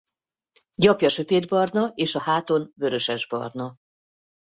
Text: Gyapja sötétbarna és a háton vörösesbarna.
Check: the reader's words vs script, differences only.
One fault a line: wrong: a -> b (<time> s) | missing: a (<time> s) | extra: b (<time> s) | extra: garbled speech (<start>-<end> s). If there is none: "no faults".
no faults